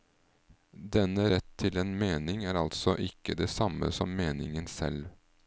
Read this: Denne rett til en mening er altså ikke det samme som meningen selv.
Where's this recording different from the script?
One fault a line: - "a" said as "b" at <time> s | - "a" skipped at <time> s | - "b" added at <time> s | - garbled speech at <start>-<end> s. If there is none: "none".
none